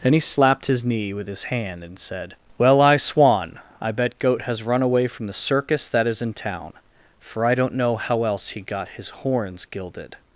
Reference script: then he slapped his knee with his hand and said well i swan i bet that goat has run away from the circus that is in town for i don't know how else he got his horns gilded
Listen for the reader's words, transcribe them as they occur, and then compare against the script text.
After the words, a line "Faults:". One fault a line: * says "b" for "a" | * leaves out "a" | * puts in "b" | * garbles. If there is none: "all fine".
then he slapped his knee with his hand and said well i swan i bet goat has run away from the circus that is in town for i don't know how else he got his horns gilded
Faults:
* leaves out "that"